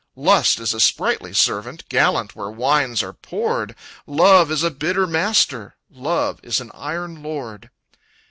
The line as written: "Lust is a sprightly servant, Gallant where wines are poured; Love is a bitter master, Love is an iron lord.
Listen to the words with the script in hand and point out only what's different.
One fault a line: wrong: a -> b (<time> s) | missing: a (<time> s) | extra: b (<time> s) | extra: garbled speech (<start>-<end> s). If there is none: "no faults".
no faults